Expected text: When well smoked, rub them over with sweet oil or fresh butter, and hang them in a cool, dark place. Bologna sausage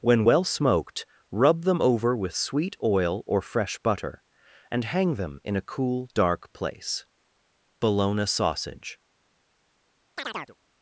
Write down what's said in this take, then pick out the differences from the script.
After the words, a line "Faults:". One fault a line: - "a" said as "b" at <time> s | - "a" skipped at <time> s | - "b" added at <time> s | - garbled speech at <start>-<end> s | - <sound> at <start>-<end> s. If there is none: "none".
When well smoked, rub them over with sweet oil or fresh butter, and hang them in a cool, dark place. Bologna sausage
Faults:
- chirp at 10.2-10.6 s